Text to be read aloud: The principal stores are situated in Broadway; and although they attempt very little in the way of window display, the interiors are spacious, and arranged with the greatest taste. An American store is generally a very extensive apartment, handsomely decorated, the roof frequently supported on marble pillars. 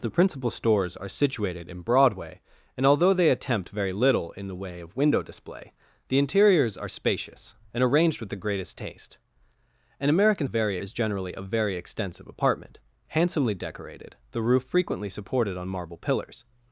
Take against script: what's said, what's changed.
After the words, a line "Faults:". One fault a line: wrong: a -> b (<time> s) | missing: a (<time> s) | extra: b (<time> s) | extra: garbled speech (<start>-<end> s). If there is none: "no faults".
The principal stores are situated in Broadway; and although they attempt very little in the way of window display, the interiors are spacious, and arranged with the greatest taste. An American very is generally a very extensive apartment, handsomely decorated, the roof frequently supported on marble pillars.
Faults:
wrong: store -> very (10.4 s)